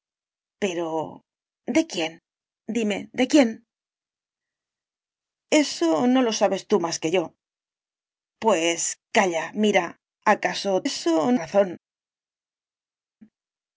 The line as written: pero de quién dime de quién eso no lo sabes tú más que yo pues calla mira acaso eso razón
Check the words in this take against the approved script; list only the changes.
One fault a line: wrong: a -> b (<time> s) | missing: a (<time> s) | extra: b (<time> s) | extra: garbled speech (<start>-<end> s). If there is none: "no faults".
no faults